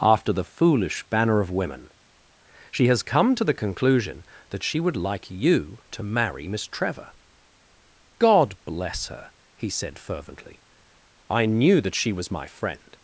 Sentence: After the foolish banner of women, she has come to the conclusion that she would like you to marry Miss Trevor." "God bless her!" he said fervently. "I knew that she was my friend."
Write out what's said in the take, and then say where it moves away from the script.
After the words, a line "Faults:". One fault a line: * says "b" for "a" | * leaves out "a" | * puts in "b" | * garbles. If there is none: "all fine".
After the foolish banner of women, she has come to the conclusion that she would like you to marry Miss Trevor." "God bless her!" he said fervently. "I knew that she was my friend."
Faults:
all fine